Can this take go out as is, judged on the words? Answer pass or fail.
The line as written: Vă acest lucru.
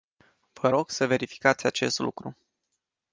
fail